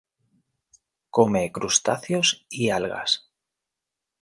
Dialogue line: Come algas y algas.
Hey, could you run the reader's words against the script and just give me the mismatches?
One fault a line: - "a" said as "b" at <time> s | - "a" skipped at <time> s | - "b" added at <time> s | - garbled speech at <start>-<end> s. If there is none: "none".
- "algas" said as "crustáceos" at 1.5 s